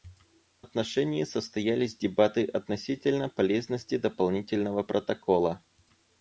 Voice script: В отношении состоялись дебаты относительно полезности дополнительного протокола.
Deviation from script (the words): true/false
false